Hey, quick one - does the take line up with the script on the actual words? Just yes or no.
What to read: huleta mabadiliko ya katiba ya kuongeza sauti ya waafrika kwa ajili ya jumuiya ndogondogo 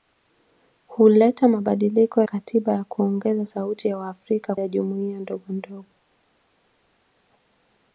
no